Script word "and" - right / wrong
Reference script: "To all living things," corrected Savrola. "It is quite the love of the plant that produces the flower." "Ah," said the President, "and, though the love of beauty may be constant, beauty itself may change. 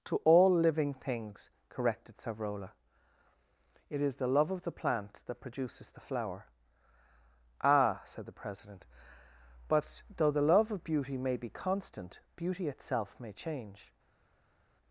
wrong